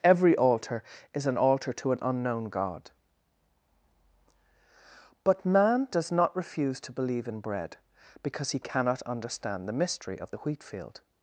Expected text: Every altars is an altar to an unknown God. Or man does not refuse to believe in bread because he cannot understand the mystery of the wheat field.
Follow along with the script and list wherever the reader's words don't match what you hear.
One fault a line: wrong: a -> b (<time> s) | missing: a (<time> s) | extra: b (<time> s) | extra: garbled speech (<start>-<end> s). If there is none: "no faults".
wrong: altars -> altar (0.3 s)
wrong: Or -> But (5.2 s)